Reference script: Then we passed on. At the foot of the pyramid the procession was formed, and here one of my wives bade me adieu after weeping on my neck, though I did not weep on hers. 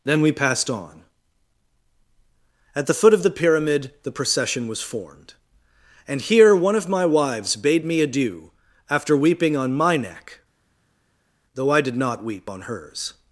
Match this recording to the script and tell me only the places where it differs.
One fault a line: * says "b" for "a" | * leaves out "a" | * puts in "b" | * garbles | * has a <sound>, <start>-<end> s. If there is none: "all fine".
all fine